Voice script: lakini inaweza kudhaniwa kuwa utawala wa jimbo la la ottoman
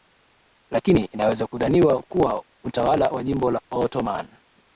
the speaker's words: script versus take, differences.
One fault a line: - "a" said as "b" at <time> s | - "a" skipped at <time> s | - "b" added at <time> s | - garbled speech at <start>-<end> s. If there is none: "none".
- "la" skipped at 3.6 s